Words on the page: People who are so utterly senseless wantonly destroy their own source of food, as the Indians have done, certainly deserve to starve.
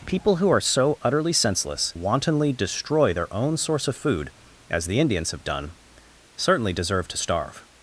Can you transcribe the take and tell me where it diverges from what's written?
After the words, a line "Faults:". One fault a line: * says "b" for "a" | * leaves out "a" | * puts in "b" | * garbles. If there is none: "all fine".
People who are so utterly senseless wantonly destroy their own source of food, as the Indians have done, certainly deserve to starve.
Faults:
all fine